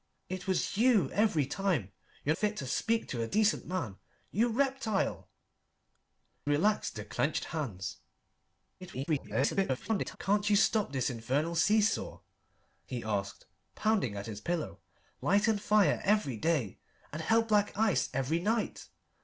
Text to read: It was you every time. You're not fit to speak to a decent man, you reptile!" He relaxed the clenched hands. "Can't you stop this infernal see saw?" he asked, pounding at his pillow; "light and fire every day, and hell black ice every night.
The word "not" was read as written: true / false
false